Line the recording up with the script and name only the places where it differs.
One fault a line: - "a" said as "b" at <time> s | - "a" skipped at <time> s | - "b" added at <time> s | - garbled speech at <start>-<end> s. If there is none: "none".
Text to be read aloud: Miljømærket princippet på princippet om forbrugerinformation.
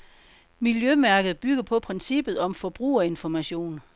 - "princippet" said as "bygger" at 1.4 s